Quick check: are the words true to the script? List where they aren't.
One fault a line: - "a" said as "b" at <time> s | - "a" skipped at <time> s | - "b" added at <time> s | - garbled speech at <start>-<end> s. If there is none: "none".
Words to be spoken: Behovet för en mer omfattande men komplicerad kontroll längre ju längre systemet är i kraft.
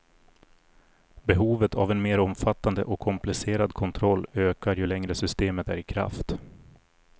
- "för" said as "av" at 1.7 s
- "men" said as "och" at 2.8 s
- "längre" said as "ökar" at 4.3 s